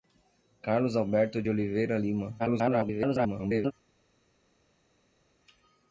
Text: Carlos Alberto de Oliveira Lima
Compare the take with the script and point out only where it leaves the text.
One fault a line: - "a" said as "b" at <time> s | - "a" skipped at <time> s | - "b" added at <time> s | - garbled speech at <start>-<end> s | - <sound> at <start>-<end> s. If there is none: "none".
- garbled speech at 2.4-3.7 s